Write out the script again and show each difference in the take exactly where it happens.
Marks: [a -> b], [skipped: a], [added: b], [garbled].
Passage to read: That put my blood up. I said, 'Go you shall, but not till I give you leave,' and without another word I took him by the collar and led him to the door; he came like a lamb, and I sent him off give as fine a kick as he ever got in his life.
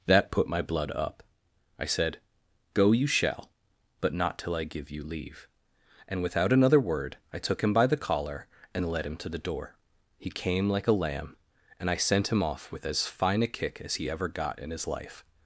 That put my blood up. I said, 'Go you shall, but not till I give you leave,' and without another word I took him by the collar and led him to the door; he came like a lamb, and I sent him off [give -> with] as fine a kick as he ever got in his life.